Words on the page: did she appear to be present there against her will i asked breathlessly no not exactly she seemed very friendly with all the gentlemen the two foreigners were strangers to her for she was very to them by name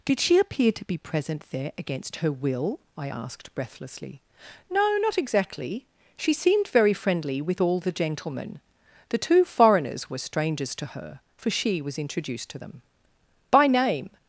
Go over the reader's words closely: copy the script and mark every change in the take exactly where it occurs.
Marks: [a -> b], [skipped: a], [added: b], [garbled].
did she appear to be present there against her will i asked breathlessly no not exactly she seemed very friendly with all the gentlemen the two foreigners were strangers to her for she was [very -> introduced] to them by name